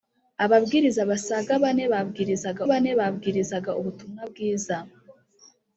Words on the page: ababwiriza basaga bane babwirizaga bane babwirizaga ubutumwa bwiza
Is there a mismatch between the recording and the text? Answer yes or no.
no